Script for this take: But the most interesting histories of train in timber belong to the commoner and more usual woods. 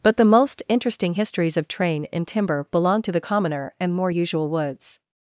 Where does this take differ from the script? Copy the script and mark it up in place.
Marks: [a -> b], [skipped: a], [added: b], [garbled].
But the most interesting histories of train in timber belong to the commoner and more usual woods.